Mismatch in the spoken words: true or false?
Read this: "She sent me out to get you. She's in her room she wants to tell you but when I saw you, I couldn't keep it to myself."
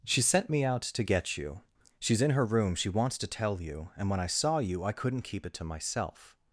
true